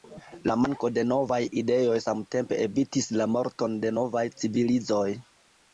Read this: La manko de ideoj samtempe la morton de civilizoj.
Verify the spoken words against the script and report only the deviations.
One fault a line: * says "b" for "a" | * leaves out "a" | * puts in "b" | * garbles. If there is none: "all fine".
* puts in "novaj"
* puts in "evitis"
* puts in "novaj"